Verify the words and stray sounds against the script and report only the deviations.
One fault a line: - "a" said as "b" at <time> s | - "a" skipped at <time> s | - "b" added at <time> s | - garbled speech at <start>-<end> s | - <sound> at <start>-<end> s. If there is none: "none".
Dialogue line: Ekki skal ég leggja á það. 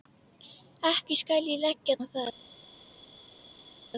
none